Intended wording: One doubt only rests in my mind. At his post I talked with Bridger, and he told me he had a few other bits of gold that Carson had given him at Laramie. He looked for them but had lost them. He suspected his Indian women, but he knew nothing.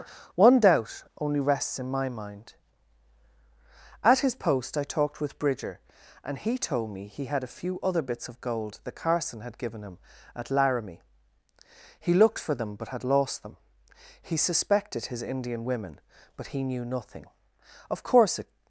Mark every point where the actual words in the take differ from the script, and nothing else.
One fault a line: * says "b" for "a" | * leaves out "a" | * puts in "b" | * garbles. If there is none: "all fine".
* puts in "Of course it"